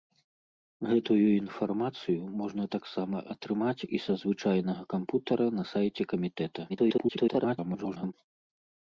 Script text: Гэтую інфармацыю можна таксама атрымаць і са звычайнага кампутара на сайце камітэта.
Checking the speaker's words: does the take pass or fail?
fail